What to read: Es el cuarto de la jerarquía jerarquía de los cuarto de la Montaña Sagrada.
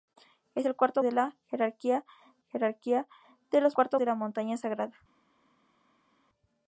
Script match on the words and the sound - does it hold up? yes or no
yes